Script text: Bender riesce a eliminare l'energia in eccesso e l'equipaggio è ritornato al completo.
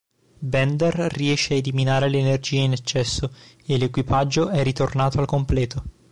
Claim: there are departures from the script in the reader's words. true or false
false